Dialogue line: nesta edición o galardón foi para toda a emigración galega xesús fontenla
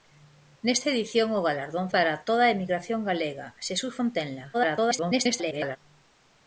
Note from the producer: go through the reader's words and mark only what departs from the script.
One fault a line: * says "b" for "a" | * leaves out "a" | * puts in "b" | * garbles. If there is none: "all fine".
* leaves out "foi"
* garbles